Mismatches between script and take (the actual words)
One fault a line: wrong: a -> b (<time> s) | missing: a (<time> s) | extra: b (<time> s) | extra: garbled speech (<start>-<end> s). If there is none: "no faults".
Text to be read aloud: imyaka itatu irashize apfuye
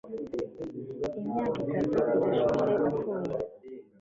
no faults